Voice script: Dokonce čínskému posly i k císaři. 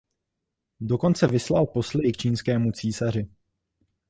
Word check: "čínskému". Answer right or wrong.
wrong